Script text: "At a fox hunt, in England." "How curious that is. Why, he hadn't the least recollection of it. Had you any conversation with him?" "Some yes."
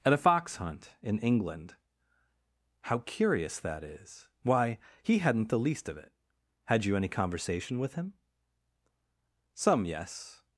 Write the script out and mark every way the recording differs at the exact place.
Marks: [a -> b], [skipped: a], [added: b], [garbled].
"At a fox hunt, in England." "How curious that is. Why, he hadn't the least [skipped: recollection] of it. Had you any conversation with him?" "Some yes."